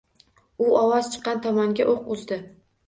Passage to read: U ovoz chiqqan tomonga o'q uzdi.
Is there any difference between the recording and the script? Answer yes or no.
no